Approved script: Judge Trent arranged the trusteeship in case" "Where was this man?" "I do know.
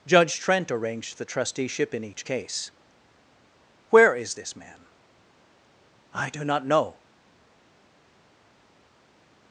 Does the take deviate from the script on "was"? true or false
true